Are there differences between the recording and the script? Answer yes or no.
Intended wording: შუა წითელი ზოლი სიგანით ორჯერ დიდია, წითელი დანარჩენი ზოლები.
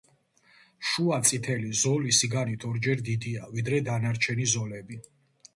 yes